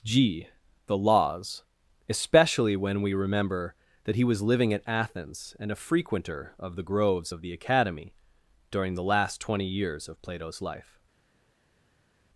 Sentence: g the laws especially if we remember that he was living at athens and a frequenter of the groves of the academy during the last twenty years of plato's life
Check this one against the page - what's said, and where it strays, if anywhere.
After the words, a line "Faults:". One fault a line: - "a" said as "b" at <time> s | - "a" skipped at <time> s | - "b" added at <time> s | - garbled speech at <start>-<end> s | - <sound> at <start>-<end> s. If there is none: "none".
g the laws especially when we remember that he was living at athens and a frequenter of the groves of the academy during the last twenty years of plato's life
Faults:
- "if" said as "when" at 2.8 s